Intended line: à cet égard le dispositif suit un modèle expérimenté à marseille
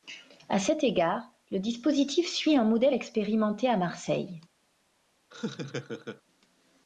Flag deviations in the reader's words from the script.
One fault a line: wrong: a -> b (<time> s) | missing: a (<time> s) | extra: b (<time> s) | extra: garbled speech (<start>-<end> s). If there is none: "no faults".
no faults